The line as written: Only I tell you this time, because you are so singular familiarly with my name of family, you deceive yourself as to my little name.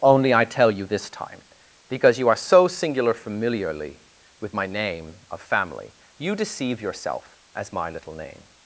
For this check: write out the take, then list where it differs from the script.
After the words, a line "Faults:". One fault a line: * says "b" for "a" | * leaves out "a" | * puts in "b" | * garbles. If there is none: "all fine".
Only I tell you this time, because you are so singular familiarly with my name of family, you deceive yourself as my little name.
Faults:
* leaves out "to"